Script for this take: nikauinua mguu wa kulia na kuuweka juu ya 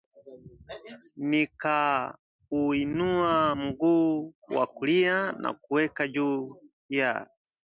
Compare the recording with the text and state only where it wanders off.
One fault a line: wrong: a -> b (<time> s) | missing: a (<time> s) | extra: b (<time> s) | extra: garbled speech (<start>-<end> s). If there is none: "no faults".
no faults